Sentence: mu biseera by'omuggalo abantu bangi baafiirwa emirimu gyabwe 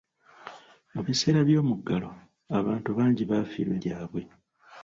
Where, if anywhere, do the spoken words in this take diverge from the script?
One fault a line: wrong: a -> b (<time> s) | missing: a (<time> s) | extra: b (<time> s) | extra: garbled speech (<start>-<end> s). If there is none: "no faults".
missing: emirimu (3.8 s)